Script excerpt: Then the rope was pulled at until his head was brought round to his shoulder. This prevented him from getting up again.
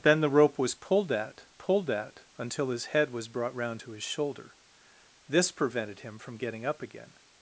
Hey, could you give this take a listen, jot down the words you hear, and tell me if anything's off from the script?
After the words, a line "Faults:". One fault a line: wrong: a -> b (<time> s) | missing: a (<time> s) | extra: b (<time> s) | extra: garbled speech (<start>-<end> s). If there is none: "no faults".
Then the rope was pulled at pulled at until his head was brought round to his shoulder. This prevented him from getting up again.
Faults:
extra: pulled at (1.5 s)